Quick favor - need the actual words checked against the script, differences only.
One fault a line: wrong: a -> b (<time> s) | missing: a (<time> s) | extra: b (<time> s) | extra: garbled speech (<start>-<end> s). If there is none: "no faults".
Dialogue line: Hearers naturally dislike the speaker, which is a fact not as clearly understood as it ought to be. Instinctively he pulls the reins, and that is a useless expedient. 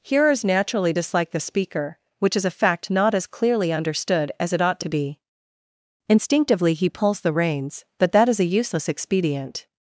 wrong: and -> but (8.0 s)